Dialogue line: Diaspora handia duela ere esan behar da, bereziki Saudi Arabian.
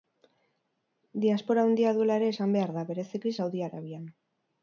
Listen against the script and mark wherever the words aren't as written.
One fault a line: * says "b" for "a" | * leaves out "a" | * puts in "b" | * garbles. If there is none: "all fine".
all fine